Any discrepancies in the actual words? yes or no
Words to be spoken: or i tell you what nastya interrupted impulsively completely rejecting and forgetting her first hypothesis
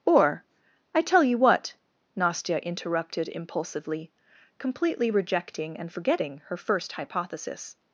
no